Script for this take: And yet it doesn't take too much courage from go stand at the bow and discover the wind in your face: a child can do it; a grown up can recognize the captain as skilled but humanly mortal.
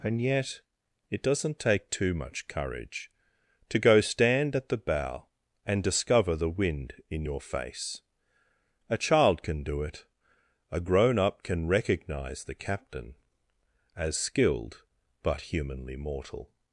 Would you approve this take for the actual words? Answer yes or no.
no